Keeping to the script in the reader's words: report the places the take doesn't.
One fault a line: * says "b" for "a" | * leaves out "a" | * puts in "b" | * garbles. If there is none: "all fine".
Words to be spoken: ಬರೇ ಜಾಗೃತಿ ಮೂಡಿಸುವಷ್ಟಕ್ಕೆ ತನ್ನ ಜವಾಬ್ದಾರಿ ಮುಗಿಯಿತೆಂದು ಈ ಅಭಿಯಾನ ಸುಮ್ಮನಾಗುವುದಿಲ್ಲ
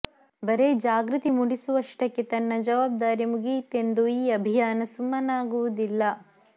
all fine